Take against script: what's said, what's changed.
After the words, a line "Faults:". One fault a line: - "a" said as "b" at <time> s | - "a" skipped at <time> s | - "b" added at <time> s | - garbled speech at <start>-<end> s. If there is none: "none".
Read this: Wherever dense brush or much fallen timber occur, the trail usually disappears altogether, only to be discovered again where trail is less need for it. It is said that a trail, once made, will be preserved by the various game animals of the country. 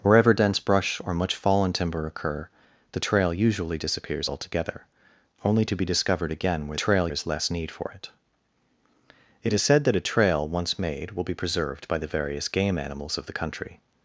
Wherever dense brush or much fallen timber occur, the trail usually disappears altogether, only to be discovered again where trail is less need for it. It is said that a trail, once made, will be preserved by the various game animals of the country.
Faults:
none